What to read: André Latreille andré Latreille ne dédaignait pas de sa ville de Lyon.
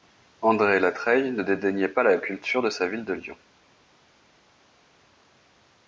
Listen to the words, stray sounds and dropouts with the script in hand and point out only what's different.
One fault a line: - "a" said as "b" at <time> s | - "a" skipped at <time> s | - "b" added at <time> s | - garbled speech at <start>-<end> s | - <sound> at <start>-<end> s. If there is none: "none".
- "andré Latreille" skipped at 1.3 s
- "la culture" added at 2.0 s